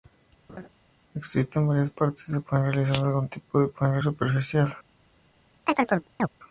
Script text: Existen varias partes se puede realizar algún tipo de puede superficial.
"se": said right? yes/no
yes